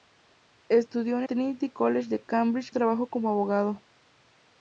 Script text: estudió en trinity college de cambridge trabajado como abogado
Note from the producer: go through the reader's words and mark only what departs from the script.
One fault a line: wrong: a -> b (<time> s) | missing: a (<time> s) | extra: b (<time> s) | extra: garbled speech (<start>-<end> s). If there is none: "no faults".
no faults